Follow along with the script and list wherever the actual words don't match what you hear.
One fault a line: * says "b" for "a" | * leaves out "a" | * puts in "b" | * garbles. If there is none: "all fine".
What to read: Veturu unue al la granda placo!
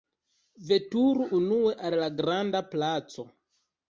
all fine